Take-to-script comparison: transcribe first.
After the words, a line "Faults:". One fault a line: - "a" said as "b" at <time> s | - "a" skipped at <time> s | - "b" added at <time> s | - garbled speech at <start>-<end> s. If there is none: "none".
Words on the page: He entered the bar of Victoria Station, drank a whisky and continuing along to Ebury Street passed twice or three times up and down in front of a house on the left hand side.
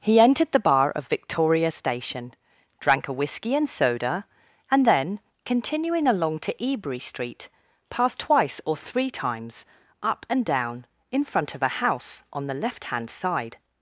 He entered the bar of Victoria Station, drank a whisky and soda, and then continuing along to Ebury Street passed twice or three times up and down in front of a house on the left hand side.
Faults:
- "soda and then" added at 3.7 s